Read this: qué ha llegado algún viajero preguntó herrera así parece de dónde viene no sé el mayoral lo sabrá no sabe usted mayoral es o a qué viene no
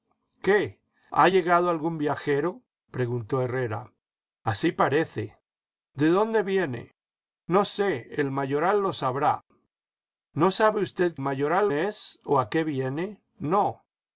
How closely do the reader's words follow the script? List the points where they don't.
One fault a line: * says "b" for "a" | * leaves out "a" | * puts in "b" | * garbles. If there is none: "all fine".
all fine